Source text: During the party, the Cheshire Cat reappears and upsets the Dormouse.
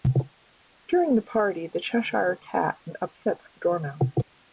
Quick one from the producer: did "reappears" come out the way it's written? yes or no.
no